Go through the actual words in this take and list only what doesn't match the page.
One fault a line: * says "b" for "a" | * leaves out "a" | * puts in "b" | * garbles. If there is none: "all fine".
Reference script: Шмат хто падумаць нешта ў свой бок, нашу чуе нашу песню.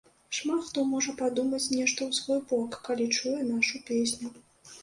* puts in "можа"
* says "калі" for "нашу"